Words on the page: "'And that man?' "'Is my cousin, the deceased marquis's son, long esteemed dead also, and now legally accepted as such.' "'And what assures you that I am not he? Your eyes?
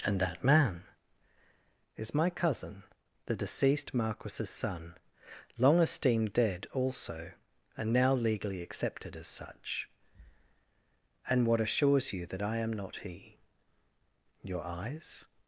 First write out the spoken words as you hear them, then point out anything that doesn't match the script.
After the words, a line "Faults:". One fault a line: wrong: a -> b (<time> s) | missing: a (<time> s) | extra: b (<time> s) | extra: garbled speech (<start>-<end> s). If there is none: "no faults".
"'And that man?' "'Is my cousin, the deceased marquis's son, long esteemed dead also, and now legally accepted as such.' "'And what assures you that I am not he? Your eyes?
Faults:
no faults